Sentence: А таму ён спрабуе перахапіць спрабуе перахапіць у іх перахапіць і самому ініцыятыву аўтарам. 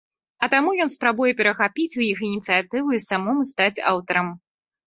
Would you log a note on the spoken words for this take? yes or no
yes